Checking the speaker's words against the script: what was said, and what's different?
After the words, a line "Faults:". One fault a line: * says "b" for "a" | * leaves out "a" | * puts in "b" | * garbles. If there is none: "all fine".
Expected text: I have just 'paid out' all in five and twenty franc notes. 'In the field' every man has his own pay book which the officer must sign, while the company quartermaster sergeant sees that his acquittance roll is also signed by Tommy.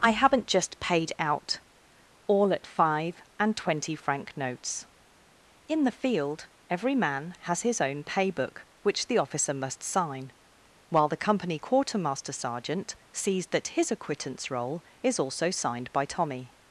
I haven't just 'paid out' all at five and twenty franc notes. 'In the field' every man has his own pay book which the officer must sign, while the company quartermaster sergeant sees that his acquittance roll is also signed by Tommy.
Faults:
* says "haven't" for "have"
* says "at" for "in"